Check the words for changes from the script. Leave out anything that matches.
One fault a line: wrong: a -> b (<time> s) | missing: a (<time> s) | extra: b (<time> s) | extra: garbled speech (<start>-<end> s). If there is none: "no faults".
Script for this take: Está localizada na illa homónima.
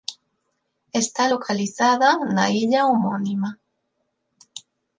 no faults